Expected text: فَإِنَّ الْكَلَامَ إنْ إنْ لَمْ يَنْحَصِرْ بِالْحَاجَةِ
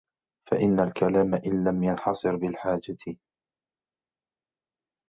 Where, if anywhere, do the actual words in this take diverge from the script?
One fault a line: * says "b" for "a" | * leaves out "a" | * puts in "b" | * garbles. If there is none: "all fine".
* leaves out "إنْ"